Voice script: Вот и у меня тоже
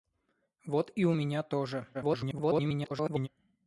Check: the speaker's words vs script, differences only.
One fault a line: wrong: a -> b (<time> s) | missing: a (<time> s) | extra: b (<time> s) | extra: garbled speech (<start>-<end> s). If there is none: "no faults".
extra: garbled speech (1.9-3.3 s)